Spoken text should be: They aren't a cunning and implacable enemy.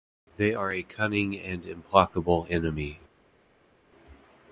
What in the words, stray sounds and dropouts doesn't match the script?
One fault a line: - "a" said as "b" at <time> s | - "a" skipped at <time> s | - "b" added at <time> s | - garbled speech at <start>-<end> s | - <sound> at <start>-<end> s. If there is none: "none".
- "aren't" said as "are" at 0.5 s